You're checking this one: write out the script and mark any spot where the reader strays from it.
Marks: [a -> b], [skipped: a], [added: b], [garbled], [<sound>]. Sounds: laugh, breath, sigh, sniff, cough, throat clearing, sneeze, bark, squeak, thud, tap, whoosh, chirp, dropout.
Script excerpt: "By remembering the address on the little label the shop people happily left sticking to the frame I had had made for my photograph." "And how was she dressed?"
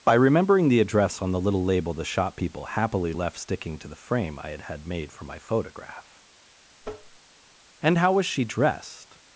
"By remembering the address on the little label the shop people happily left sticking to the frame I had had made for my photograph." [tap] "And how was she dressed?"